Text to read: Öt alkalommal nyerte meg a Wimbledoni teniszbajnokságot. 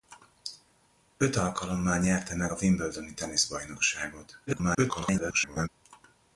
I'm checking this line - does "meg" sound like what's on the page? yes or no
yes